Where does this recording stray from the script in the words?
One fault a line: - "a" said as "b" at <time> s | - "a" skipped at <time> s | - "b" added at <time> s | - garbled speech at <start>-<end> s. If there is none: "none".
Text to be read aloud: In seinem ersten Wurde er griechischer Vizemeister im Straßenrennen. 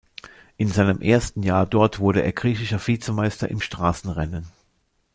- "Jahr dort" added at 1.4 s